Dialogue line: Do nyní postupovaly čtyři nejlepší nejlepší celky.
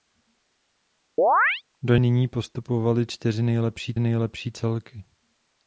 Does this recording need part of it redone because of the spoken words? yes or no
no